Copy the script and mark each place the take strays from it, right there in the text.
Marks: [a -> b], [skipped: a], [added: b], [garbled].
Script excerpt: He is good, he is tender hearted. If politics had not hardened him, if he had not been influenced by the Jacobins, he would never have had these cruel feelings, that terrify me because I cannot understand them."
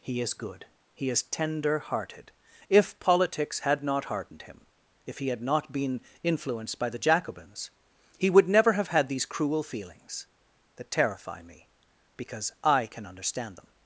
He is good, he is tender hearted. If politics had not hardened him, if he had not been influenced by the Jacobins, he would never have had these cruel feelings, that terrify me because I [cannot -> can] understand them."